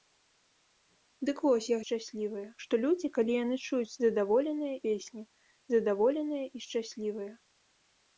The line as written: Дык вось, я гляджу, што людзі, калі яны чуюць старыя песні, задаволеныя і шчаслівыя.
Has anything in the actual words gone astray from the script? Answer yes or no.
yes